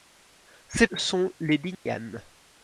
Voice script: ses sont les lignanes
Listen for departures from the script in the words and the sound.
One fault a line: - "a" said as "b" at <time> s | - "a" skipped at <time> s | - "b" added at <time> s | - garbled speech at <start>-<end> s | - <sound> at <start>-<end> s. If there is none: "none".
- dropout at 1.7-1.9 s